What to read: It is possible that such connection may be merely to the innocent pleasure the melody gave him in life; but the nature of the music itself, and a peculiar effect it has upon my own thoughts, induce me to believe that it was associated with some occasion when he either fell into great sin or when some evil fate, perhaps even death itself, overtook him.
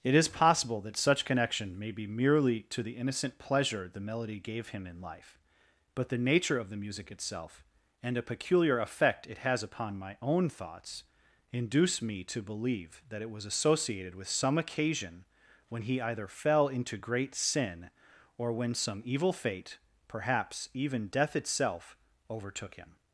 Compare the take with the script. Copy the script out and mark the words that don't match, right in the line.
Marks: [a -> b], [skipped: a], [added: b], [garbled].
It is possible that such connection may be merely to the innocent pleasure the melody gave him in life; but the nature of the music itself, and a peculiar effect it has upon my own thoughts, induce me to believe that it was associated with some occasion when he either fell into great sin or when some evil fate, perhaps even death itself, overtook him.